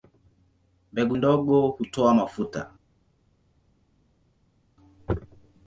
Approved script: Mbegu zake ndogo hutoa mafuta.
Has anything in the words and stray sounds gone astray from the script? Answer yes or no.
yes